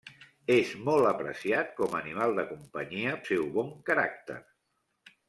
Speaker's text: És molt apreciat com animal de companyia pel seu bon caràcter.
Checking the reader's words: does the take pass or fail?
fail